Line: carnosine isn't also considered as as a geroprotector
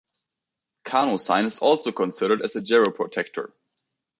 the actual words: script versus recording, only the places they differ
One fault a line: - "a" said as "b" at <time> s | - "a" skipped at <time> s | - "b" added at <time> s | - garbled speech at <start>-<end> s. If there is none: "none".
- "isn't" said as "is" at 1.4 s
- "as" skipped at 2.6 s